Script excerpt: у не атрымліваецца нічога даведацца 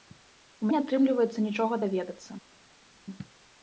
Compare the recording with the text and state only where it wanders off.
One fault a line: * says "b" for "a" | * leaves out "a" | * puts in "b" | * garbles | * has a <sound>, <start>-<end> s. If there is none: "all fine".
all fine